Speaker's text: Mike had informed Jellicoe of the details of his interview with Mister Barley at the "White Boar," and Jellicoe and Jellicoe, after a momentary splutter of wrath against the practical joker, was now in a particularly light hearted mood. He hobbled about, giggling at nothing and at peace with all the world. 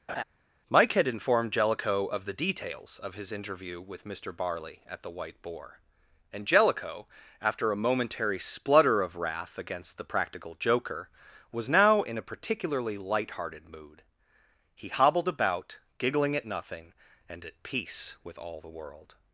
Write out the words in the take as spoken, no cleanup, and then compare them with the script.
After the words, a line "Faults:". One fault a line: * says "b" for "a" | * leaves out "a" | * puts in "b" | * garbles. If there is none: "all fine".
Mike had informed Jellicoe of the details of his interview with Mister Barley at the "White Boar," and Jellicoe, after a momentary splutter of wrath against the practical joker, was now in a particularly light hearted mood. He hobbled about, giggling at nothing and at peace with all the world.
Faults:
* leaves out "and Jellicoe"